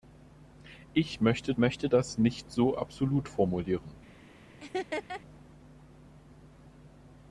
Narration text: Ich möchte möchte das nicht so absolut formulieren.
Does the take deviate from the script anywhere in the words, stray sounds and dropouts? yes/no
yes